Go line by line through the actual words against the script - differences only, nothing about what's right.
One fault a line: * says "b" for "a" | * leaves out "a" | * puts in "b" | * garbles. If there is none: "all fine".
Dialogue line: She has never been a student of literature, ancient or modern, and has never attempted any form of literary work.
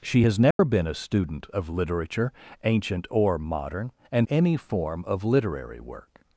* leaves out "has never attempted"